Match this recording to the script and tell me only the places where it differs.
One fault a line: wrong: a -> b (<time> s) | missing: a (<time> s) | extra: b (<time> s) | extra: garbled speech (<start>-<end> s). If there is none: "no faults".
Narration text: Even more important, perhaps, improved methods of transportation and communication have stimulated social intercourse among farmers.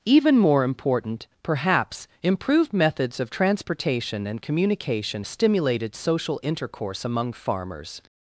missing: have (5.3 s)